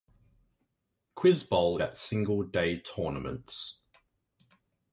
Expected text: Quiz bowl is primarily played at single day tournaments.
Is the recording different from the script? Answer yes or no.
yes